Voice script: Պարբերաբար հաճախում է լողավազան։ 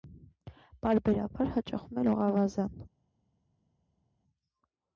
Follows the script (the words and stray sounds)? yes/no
yes